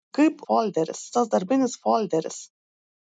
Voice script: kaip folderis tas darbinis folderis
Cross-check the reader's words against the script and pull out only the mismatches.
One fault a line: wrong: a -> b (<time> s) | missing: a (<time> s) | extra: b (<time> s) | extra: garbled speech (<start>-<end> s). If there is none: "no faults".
no faults